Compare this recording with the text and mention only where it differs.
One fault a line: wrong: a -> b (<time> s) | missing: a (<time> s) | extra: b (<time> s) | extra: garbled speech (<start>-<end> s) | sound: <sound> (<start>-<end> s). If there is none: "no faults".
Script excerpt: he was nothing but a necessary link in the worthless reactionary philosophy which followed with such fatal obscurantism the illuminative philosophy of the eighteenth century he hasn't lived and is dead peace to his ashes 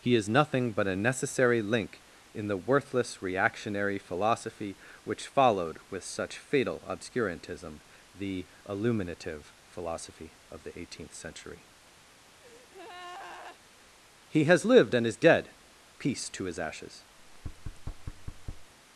wrong: was -> is (0.1 s)
sound: breath (12.4-13.6 s)
wrong: hasn't -> has (14.4 s)
sound: thud (17.2-18.7 s)